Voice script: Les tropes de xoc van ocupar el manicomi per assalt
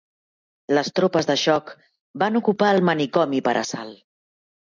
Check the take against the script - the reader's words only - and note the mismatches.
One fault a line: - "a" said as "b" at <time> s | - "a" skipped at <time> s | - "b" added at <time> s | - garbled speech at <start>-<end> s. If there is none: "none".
none